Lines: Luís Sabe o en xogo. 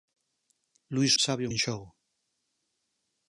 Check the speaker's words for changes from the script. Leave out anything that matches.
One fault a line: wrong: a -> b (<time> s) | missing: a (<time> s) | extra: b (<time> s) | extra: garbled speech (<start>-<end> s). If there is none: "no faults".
no faults